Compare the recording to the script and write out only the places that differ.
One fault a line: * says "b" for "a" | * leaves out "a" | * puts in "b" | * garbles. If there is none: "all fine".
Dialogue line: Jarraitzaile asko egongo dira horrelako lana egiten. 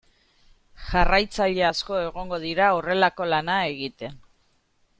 all fine